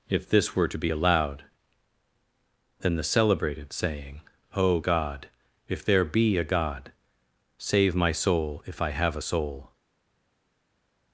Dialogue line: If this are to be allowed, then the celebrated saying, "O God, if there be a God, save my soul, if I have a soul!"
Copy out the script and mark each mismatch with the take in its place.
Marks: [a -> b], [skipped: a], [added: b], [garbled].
If this [are -> were] to be allowed, then the celebrated saying, "O God, if there be a God, save my soul, if I have a soul!"